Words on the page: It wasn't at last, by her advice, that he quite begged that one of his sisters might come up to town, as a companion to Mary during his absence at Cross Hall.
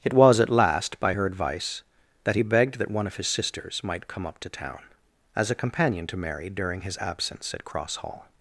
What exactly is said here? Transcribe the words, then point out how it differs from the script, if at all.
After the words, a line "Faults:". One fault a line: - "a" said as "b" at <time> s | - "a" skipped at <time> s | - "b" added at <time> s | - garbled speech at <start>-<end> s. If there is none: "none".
It was at last, by her advice, that he begged that one of his sisters might come up to town, as a companion to Mary during his absence at Cross Hall.
Faults:
- "wasn't" said as "was" at 0.1 s
- "quite" skipped at 2.4 s